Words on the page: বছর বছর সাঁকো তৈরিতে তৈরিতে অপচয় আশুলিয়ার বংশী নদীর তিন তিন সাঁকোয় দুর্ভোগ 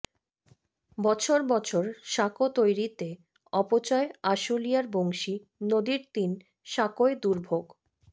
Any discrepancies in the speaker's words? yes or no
yes